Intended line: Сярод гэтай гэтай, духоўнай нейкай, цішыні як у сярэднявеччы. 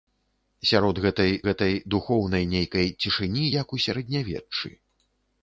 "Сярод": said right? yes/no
yes